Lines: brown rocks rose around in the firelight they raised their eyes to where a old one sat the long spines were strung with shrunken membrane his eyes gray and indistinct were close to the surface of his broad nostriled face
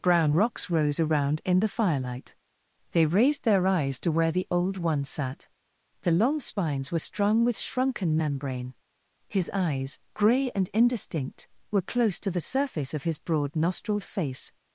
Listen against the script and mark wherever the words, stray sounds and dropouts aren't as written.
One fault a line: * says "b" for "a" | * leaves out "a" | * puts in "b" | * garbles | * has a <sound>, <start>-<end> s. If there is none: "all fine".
* says "the" for "a"